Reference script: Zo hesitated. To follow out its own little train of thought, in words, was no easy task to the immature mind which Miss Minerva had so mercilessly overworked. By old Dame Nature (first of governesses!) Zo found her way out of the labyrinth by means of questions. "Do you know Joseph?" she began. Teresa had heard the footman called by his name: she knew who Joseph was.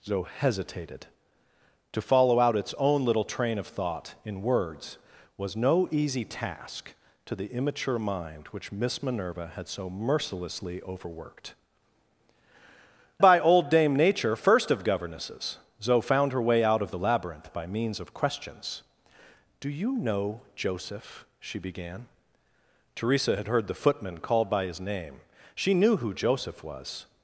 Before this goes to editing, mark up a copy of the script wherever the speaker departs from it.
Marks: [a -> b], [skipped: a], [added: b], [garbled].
Zo hesitated. To follow out its own little train of thought, in words, was no easy task to the immature mind which Miss Minerva had so mercilessly overworked. By old Dame Nature (first of governesses!) Zo found her way out of the labyrinth by means of questions. "Do you know Joseph?" she began. Teresa had heard the footman called by his name: she knew who Joseph was.